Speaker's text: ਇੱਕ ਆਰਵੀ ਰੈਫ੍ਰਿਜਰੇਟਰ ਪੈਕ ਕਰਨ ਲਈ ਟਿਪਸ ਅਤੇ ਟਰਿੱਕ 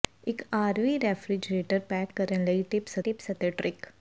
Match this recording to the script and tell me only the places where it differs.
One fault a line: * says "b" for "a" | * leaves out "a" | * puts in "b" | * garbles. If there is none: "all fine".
* puts in "ਟਿਪਸ"